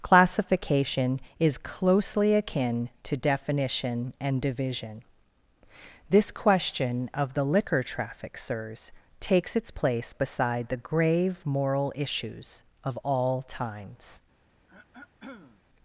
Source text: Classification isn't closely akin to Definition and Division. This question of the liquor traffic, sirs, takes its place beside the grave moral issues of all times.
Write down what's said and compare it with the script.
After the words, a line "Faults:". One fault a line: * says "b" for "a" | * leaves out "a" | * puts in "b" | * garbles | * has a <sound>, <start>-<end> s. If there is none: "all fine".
Classification is closely akin to Definition and Division. This question of the liquor traffic, sirs, takes its place beside the grave moral issues of all times.
Faults:
* says "is" for "isn't"
* has a throat clearing, 14.7-15.6 s